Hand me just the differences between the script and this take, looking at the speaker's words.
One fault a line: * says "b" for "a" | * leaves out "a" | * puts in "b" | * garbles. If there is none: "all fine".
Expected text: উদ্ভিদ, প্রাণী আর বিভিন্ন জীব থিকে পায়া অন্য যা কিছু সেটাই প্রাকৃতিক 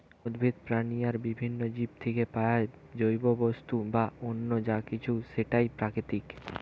* puts in "জৈব বস্তু বা"